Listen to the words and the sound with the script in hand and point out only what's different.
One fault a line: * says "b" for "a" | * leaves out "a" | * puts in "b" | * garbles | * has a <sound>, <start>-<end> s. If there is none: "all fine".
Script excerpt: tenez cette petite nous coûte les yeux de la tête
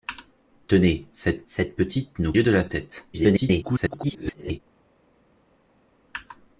* puts in "cette"
* leaves out "coûte les"
* garbles